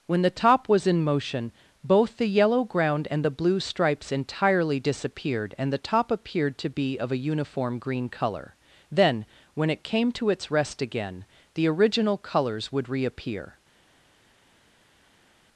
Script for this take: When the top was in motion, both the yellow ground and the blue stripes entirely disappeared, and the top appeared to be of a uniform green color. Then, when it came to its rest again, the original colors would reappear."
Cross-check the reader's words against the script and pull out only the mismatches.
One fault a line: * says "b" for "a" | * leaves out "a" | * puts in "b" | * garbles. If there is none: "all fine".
all fine